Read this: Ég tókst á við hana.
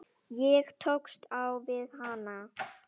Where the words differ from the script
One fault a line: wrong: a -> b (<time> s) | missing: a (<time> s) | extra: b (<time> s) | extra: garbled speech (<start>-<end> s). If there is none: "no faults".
no faults